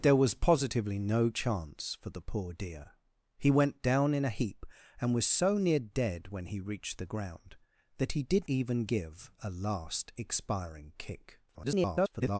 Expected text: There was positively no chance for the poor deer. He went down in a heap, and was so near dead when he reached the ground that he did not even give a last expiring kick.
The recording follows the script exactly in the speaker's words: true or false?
false